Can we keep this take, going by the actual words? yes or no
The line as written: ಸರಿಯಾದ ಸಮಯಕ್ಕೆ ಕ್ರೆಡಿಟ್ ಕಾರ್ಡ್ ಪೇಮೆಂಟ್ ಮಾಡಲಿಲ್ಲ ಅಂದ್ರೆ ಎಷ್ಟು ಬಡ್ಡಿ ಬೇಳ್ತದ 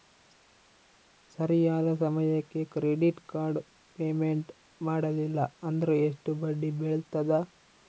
yes